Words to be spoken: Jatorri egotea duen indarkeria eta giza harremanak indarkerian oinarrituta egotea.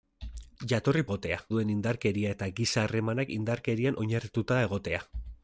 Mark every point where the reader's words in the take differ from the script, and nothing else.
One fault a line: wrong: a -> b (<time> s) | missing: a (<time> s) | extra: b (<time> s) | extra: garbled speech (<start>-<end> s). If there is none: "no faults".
no faults